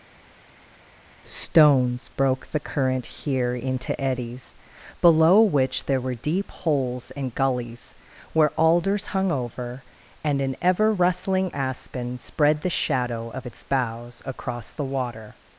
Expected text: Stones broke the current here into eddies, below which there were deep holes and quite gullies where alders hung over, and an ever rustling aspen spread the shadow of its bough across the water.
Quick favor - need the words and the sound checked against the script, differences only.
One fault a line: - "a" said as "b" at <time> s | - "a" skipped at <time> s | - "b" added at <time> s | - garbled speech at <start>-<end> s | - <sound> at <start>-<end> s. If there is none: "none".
- "quite" skipped at 7.3 s
- "bough" said as "boughs" at 13.6 s